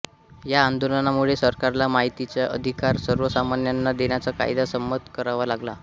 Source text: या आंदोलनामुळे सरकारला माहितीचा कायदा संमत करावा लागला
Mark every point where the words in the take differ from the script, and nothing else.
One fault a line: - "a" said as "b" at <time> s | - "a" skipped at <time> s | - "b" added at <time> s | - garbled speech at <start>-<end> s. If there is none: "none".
- "अधिकार सर्वसामान्यांना देण्याचा" added at 2.5 s